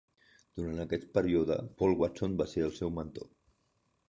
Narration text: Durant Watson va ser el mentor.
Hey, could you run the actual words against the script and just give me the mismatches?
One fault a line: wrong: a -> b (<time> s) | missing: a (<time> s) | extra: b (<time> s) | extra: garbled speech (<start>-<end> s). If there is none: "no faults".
extra: aquest període Paul (0.8 s)
extra: seu (2.8 s)